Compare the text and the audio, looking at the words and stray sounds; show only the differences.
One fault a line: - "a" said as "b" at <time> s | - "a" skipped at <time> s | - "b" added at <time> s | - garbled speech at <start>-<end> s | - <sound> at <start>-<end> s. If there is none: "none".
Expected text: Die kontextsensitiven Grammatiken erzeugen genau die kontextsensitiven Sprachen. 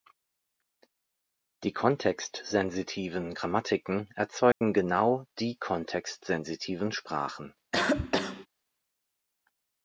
- dropout at 4.5-4.6 s
- cough at 7.7-8.5 s